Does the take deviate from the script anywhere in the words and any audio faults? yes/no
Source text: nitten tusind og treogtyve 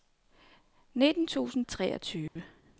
yes